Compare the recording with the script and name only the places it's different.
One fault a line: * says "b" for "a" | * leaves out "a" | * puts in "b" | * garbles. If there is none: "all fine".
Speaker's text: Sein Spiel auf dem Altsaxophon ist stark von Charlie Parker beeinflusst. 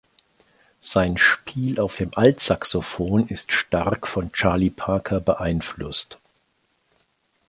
all fine